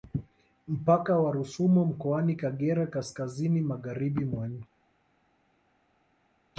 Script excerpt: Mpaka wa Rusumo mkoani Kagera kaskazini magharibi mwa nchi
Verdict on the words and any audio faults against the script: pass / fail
pass